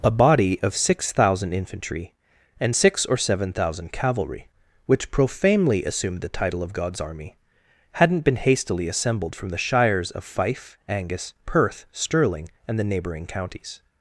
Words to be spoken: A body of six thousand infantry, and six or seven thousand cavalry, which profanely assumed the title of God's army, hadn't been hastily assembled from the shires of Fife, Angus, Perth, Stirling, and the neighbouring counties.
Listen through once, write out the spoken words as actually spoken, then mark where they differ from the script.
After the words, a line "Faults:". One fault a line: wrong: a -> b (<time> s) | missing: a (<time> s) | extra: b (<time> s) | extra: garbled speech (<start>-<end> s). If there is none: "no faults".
A body of six thousand infantry, and six or seven thousand cavalry, which profanely assumed the title of God's army, hadn't been hastily assembled from the shires of Fife, Angus, Perth, Stirling, and the neighbouring counties.
Faults:
no faults